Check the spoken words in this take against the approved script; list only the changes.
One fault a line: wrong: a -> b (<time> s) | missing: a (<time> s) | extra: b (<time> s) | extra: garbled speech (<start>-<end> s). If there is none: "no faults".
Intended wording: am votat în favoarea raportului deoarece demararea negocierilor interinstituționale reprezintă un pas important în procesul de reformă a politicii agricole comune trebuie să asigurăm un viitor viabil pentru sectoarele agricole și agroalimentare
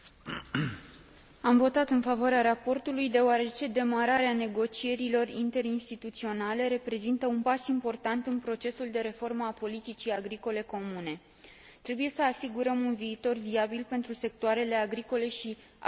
no faults